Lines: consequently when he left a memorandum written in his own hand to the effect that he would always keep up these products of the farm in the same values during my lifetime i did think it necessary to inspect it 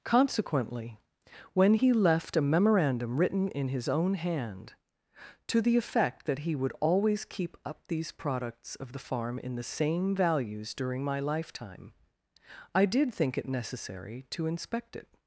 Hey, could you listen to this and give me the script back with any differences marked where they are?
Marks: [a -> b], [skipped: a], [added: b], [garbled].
consequently when he left a memorandum written in his own hand to the effect that he would always keep up these products of the farm in the same values during my lifetime i did think it necessary to inspect it